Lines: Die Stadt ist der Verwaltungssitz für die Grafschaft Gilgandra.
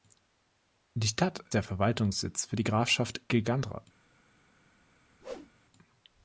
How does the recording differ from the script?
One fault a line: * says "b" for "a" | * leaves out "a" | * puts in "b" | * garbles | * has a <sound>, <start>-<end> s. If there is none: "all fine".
* leaves out "ist"
* has a whoosh, 5.2-5.5 s